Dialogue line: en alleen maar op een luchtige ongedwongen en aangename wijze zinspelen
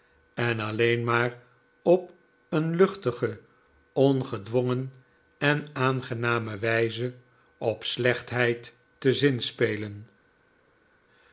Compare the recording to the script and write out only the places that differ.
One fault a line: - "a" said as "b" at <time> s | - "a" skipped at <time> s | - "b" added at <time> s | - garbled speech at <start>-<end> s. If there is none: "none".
- "op slechtheid te" added at 7.6 s